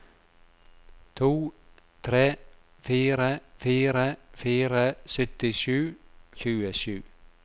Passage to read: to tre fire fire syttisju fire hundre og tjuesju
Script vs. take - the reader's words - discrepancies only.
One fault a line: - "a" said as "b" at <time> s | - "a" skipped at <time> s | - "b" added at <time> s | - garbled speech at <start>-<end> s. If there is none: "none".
- "syttisju" skipped at 4.1 s
- "hundre og" said as "syttisju" at 5.1 s